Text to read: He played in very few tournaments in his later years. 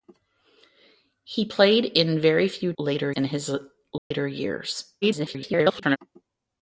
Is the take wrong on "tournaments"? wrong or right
wrong